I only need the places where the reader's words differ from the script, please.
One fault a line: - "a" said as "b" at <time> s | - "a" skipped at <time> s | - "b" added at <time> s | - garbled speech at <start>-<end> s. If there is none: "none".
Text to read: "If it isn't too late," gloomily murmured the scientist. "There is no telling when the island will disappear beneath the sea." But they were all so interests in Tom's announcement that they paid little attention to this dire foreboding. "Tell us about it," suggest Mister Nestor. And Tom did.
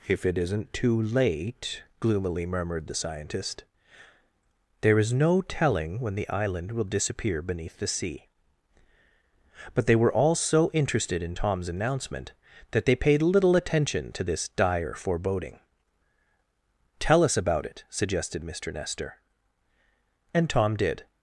- "interests" said as "interested" at 10.7 s
- "suggest" said as "suggested" at 17.9 s